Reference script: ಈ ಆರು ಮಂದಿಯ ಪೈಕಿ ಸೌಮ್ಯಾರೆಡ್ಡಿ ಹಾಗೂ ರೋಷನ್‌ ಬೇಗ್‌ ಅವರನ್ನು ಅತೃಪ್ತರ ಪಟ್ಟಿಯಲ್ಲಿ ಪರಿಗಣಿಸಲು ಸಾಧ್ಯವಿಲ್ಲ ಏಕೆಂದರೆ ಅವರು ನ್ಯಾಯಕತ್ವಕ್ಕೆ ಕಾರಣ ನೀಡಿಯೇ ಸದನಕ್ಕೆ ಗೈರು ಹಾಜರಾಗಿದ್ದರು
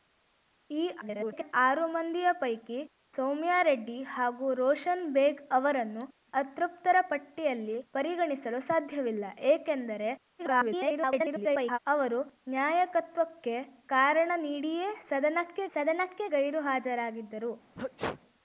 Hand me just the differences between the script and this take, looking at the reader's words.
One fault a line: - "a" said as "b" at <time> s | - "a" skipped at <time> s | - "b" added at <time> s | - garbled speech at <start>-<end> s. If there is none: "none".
- garbled speech at 1.0-1.5 s
- garbled speech at 10.4-11.8 s
- "ಸದನಕ್ಕೆ" added at 15.7 s